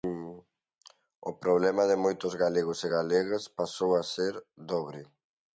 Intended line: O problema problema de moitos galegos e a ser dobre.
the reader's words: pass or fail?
fail